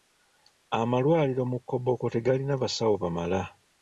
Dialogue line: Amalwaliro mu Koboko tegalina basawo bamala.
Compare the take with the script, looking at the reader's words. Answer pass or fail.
pass